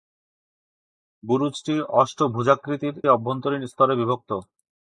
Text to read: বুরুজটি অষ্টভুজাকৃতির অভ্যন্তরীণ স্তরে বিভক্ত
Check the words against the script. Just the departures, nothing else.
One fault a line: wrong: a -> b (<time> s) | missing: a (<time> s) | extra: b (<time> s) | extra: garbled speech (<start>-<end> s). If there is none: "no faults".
no faults